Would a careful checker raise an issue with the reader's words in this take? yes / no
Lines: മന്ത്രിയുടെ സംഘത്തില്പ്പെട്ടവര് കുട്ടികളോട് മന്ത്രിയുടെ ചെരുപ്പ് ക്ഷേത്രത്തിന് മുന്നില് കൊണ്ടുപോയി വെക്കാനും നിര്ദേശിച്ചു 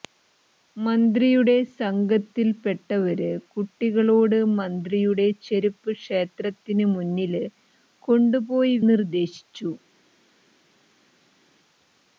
yes